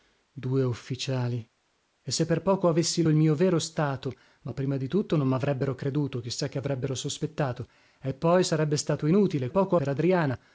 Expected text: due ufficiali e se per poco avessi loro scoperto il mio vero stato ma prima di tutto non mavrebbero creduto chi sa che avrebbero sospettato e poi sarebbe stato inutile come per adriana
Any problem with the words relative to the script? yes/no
yes